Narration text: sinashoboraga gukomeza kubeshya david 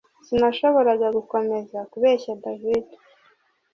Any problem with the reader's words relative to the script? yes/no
no